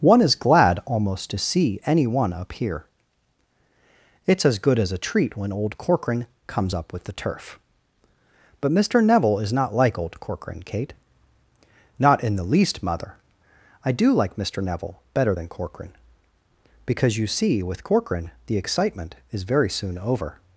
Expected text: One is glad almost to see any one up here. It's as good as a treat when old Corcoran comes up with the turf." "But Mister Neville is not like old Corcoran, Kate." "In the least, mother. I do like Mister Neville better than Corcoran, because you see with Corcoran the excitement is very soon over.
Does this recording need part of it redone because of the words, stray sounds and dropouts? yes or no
yes